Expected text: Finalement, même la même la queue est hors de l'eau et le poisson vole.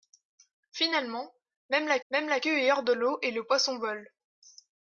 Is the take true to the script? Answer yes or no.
yes